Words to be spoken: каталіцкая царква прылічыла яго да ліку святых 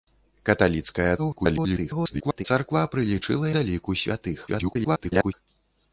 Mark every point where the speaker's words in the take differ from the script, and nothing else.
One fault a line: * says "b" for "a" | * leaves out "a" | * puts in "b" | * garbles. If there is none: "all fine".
* garbles
* leaves out "яго"
* garbles